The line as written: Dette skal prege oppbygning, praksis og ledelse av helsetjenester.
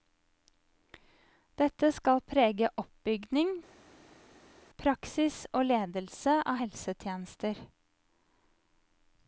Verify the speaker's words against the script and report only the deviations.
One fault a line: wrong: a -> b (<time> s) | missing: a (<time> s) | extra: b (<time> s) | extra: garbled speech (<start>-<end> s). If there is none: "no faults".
no faults